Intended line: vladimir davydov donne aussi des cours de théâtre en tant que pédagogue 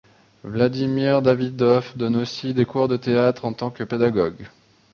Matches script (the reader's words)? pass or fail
pass